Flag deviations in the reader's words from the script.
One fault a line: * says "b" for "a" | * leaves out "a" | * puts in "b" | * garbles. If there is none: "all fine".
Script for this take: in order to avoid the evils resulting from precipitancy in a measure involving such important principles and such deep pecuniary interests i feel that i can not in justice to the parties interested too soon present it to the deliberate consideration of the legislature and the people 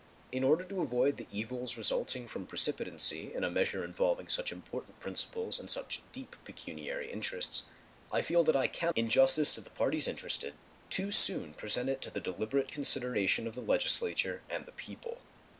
* leaves out "not"